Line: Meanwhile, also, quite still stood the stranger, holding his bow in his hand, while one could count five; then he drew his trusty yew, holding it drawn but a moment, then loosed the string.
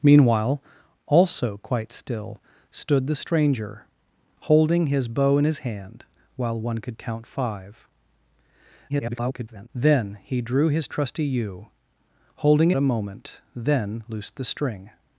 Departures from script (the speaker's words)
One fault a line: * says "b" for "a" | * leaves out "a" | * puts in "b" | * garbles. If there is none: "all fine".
* garbles
* leaves out "it drawn but"